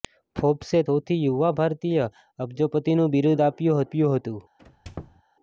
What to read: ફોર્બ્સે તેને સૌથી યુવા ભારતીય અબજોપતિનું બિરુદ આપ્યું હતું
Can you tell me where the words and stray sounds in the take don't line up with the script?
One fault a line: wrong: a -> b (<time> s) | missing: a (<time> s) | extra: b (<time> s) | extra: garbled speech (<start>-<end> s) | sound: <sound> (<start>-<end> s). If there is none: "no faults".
missing: તેને (0.8 s)
extra: આપ્યું (3.8 s)
sound: squeak (4.6-5.2 s)